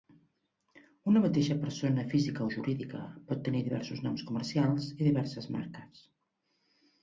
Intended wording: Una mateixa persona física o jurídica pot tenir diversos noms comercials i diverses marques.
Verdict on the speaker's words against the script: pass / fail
pass